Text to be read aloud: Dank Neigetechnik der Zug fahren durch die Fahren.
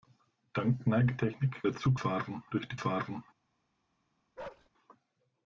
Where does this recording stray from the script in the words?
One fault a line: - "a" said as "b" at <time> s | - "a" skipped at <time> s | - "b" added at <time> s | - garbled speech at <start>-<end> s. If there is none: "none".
none